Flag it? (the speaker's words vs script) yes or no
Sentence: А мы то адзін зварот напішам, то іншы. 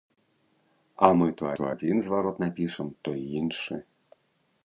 yes